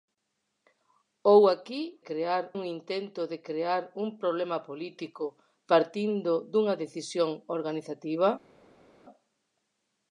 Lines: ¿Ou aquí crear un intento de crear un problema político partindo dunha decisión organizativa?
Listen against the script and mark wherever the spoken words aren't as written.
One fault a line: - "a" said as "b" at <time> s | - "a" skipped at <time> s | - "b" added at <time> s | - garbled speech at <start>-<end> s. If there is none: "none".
none